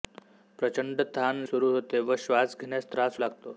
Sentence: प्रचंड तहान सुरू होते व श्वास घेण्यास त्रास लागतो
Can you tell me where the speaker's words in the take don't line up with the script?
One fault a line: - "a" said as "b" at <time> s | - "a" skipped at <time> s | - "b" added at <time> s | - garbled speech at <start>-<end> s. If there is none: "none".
none